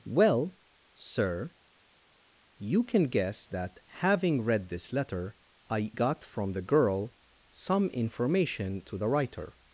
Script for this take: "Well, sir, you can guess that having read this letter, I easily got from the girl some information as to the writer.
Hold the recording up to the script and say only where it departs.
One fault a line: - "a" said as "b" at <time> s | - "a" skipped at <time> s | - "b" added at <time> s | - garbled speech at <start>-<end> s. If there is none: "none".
- "easily" skipped at 5.9 s
- "as" skipped at 8.8 s